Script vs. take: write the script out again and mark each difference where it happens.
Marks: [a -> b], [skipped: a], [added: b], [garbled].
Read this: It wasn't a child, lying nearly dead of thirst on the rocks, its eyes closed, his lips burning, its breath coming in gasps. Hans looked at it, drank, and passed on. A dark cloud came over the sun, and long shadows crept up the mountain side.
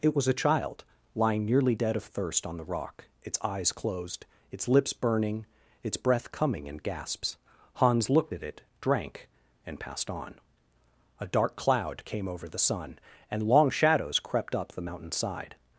It [wasn't -> was] a child, lying nearly dead of thirst on the [rocks, -> rock] its eyes closed, [his -> its] lips burning, its breath coming in gasps. Hans looked at it, drank, and passed on. A dark cloud came over the sun, and long shadows crept up the mountain side.